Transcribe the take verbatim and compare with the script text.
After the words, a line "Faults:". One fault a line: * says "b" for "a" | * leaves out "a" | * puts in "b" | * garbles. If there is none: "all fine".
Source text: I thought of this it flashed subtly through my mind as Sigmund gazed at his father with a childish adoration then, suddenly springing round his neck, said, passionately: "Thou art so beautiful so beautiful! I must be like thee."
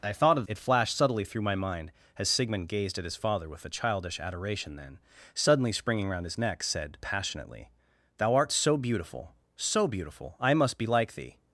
I thought of it flashed subtly through my mind as Sigmund gazed at his father with a childish adoration then, suddenly springing round his neck, said, passionately: "Thou art so beautiful so beautiful! I must be like thee."
Faults:
* leaves out "this"